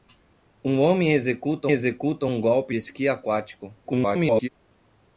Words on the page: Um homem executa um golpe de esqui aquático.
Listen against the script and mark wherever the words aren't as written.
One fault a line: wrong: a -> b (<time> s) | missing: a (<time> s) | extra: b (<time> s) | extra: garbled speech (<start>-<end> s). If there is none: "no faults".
extra: executa (1.7 s)
missing: de (2.7 s)
extra: garbled speech (3.8-4.5 s)